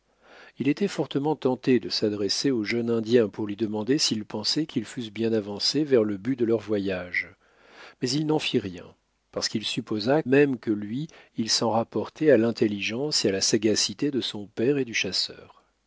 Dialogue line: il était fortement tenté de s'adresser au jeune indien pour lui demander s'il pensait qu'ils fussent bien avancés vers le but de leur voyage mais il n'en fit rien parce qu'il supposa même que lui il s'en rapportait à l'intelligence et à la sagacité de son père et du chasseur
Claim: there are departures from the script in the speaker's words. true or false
false